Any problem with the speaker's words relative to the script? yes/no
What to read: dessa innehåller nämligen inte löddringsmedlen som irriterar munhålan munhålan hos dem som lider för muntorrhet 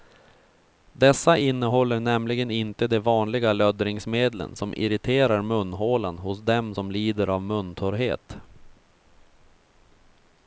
yes